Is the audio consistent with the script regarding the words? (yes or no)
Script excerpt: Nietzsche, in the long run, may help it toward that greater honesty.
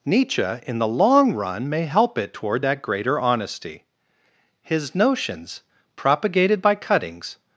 no